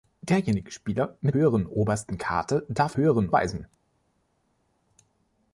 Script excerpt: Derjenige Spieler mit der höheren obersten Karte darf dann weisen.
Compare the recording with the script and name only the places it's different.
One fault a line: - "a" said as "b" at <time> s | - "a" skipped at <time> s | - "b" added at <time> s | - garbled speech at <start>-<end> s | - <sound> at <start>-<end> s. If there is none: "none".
- "der" skipped at 1.4 s
- "dann" said as "höheren" at 3.0 s